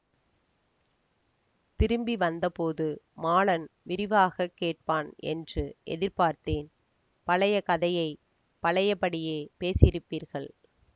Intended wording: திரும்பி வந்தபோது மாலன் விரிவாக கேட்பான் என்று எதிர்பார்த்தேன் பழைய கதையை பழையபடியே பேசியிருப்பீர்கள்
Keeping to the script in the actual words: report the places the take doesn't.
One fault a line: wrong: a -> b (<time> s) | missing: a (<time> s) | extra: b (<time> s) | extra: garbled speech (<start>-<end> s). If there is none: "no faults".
no faults